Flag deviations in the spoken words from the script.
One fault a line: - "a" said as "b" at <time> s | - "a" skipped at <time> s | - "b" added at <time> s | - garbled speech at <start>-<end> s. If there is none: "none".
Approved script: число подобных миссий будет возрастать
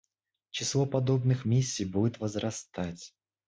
none